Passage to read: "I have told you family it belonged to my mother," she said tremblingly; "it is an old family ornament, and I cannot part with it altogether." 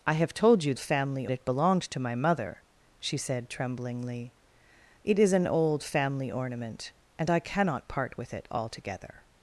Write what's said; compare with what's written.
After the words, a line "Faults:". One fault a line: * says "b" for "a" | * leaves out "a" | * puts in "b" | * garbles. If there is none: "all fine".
"I have told you family it belonged to my mother," she said tremblingly; "it is an old family ornament, and I cannot part with it altogether."
Faults:
all fine